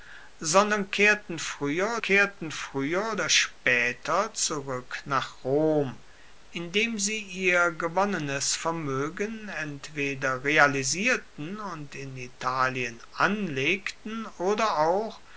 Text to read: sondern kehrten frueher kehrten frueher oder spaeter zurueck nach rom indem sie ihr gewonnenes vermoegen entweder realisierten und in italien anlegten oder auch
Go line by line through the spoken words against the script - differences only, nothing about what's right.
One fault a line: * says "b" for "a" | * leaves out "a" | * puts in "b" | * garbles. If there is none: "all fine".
all fine